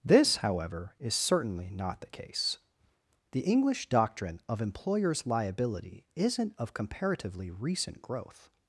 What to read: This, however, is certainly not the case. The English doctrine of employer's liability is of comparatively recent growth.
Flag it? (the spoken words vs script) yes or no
yes